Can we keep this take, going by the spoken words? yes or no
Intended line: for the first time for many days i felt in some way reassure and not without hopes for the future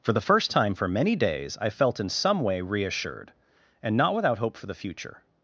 no